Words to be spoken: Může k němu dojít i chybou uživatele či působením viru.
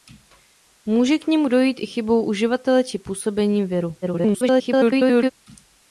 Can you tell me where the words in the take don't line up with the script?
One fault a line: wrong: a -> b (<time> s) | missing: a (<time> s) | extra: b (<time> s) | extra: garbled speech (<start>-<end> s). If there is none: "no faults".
extra: garbled speech (4.0-5.3 s)